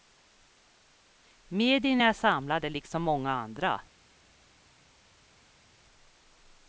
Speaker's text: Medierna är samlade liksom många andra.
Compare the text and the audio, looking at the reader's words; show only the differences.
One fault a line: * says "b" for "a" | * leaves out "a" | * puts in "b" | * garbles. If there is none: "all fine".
all fine